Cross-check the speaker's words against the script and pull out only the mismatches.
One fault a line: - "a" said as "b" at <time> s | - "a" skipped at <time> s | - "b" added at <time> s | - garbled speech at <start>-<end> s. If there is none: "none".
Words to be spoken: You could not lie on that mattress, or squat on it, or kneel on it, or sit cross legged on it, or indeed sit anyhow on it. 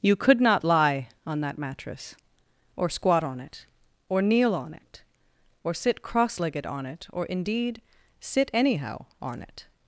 none